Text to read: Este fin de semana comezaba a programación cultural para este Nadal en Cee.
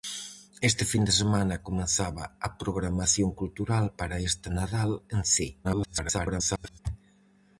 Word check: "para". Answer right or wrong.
right